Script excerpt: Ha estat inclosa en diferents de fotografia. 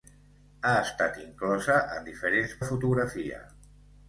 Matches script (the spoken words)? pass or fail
pass